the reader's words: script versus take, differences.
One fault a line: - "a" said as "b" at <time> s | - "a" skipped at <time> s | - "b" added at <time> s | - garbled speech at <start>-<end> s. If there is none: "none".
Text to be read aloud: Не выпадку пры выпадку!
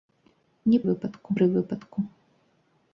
none